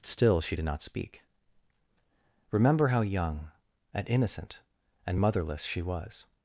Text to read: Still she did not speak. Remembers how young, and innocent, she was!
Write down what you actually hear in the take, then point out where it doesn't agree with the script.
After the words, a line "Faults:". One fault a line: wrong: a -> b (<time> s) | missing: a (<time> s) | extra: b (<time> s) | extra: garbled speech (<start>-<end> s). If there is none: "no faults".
Still she did not speak. Remember how young, and innocent, and motherless she was!
Faults:
wrong: Remembers -> Remember (2.5 s)
extra: and motherless (5.0 s)